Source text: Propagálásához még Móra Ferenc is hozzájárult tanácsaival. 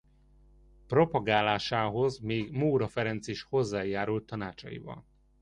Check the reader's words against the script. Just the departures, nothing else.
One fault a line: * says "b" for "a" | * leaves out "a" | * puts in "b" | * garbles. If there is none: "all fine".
all fine